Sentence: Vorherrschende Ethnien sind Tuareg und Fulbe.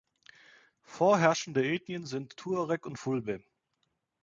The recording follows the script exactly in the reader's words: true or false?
true